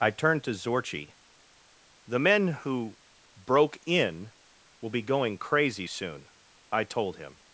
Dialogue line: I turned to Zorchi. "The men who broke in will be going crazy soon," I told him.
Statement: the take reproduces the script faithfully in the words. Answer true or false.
true